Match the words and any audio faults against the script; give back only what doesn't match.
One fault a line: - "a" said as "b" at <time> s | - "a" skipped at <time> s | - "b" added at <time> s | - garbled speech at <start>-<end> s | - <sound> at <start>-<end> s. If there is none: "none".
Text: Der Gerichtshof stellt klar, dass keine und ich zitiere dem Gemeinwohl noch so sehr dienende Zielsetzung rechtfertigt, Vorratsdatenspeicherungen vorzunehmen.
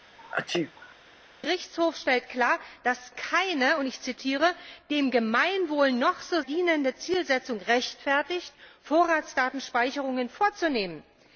- sneeze at 0.2-1.0 s
- "sehr" skipped at 6.4 s